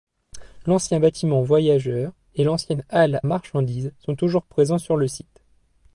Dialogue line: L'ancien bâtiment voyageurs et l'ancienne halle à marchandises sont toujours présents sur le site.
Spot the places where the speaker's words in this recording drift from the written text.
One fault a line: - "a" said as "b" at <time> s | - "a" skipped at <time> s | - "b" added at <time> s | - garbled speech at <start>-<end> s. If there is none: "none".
- "à" skipped at 3.2 s